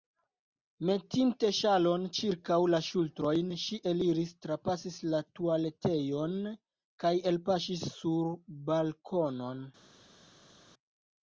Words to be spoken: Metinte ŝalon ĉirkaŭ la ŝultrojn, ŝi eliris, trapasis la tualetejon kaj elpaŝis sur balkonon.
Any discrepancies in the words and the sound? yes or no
no